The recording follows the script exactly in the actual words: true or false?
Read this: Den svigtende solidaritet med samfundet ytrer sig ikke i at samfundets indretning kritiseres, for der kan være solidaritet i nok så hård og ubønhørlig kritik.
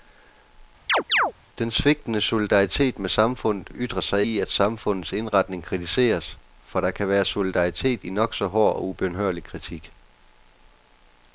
false